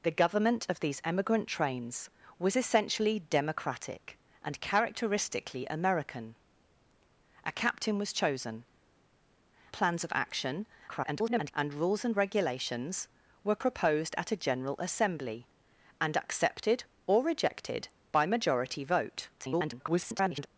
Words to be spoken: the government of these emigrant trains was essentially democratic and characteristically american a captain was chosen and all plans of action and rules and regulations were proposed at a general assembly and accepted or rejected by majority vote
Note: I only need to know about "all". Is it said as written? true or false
false